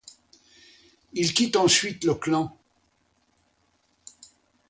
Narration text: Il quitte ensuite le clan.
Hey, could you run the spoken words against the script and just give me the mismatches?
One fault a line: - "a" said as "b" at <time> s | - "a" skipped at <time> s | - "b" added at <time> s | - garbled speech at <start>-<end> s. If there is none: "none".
none